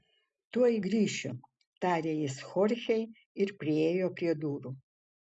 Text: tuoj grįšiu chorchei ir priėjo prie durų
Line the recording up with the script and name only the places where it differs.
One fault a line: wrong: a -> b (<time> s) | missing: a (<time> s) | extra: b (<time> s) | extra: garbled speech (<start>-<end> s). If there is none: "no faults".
extra: tarė jis (1.8 s)